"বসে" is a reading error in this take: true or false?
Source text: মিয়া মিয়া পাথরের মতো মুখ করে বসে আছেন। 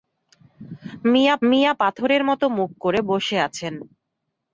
false